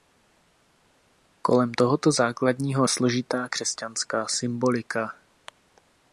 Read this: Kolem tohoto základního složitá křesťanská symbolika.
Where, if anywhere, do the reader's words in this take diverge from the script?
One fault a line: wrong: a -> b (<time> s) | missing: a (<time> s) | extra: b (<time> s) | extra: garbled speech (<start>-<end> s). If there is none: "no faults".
no faults